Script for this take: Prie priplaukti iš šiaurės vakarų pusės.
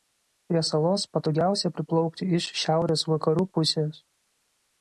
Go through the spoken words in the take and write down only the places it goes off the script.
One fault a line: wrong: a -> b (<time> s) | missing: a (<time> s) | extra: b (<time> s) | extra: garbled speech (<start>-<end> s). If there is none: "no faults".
extra: salos patogiausia (0.7 s)